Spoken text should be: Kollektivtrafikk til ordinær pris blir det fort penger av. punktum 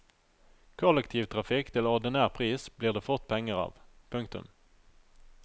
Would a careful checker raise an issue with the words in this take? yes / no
no